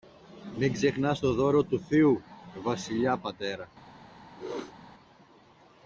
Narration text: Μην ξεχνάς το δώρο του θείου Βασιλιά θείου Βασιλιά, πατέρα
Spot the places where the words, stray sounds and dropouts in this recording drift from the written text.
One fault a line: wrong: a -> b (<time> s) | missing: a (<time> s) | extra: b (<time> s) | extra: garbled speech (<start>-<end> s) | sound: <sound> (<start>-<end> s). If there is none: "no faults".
missing: θείου Βασιλιά (3.2 s)
sound: sneeze (4.3-4.8 s)